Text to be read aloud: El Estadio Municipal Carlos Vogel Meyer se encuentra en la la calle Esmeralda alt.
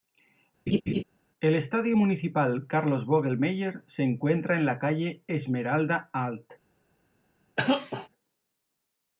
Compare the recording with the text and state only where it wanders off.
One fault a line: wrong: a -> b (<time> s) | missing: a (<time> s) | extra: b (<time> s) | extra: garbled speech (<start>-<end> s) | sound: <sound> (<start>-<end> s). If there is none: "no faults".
sound: laugh (0.7-1.0 s)
missing: la (4.8 s)
sound: cough (7.6-8.1 s)